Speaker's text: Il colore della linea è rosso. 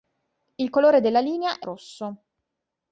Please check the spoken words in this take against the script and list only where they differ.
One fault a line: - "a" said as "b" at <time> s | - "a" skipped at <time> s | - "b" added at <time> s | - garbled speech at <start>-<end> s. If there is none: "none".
none